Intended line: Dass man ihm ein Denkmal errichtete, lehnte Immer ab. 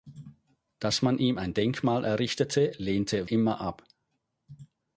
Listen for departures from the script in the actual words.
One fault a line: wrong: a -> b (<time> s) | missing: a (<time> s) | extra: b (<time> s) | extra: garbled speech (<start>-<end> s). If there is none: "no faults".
no faults